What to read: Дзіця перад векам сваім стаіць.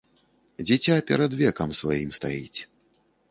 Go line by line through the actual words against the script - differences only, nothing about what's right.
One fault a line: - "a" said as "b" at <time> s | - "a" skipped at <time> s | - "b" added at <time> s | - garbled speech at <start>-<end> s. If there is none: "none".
none